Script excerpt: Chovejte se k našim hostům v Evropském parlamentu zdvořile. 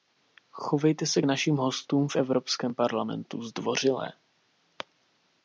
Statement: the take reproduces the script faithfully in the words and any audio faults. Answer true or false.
true